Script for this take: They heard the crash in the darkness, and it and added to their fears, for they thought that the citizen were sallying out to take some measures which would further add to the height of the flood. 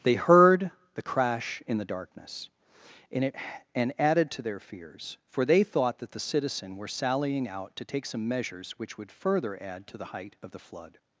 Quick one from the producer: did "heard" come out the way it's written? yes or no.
yes